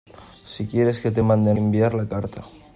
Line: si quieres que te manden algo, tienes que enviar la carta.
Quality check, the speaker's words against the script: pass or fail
fail